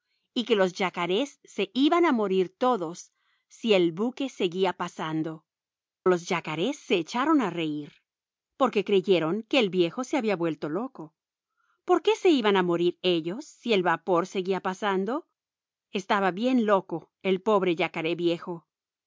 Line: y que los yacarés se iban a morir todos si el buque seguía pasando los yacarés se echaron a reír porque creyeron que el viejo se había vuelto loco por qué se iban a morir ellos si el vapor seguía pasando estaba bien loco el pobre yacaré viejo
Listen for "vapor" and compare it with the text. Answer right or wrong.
right